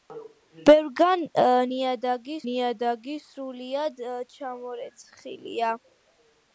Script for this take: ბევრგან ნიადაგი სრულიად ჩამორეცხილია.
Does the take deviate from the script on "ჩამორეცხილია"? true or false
false